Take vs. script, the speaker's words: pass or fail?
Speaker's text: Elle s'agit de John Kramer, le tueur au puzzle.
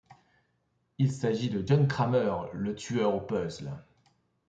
fail